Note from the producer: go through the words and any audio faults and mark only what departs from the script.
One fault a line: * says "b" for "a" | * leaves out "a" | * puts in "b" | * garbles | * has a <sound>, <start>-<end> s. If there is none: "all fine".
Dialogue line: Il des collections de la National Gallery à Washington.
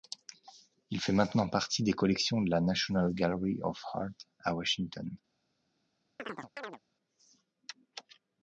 * puts in "fait maintenant partie"
* puts in "of Art"
* has a chirp, 6.2-6.8 s